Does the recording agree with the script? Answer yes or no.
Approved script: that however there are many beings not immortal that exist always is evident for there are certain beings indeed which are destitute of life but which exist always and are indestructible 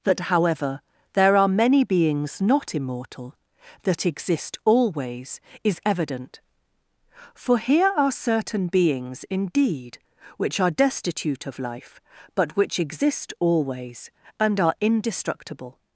no